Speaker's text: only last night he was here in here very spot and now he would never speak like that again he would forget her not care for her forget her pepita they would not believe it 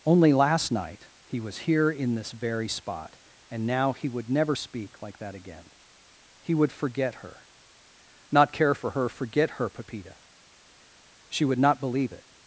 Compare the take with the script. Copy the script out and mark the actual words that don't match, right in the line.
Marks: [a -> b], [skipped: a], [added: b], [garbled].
only last night he was here in [here -> this] very spot and now he would never speak like that again he would forget her not care for her forget her pepita [they -> she] would not believe it